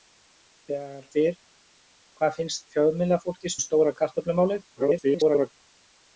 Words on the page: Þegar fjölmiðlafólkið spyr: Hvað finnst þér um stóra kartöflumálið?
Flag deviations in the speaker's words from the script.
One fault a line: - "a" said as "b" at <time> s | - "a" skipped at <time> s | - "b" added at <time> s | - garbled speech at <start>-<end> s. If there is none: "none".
- "fjölmiðlafólkið" skipped at 1.1 s
- "þér" said as "fjölmiðlafólkið" at 2.7 s
- garbled speech at 4.8-5.5 s